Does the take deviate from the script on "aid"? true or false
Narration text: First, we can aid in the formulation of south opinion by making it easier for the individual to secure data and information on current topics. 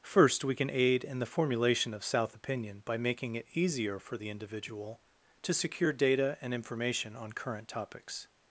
false